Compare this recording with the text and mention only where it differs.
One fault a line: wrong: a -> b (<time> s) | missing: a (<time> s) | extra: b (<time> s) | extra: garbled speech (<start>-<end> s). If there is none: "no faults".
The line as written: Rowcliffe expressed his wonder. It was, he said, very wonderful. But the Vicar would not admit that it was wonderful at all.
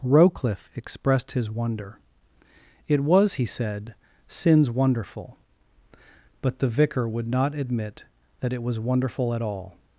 wrong: very -> sins (4.3 s)